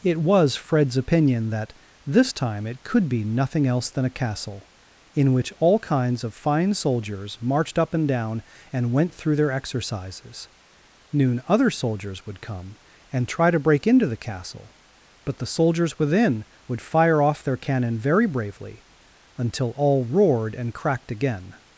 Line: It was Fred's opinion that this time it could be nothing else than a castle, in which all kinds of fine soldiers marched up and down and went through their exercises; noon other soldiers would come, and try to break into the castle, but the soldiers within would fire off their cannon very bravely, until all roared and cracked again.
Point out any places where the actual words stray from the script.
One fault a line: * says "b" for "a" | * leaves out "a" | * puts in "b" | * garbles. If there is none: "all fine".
all fine